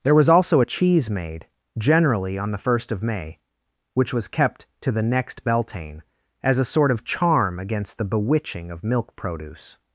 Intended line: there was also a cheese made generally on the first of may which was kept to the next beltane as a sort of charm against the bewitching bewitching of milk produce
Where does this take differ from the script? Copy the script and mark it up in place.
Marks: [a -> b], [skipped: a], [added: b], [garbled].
there was also a cheese made generally on the first of may which was kept to the next beltane as a sort of charm against the bewitching [skipped: bewitching] of milk produce